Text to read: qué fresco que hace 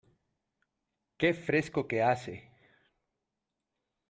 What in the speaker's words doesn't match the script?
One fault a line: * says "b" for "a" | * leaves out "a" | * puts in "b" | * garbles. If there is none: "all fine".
all fine